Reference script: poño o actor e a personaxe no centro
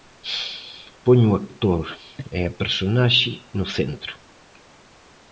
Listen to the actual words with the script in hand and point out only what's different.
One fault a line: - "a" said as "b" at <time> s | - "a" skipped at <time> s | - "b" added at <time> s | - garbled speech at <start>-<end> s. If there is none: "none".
none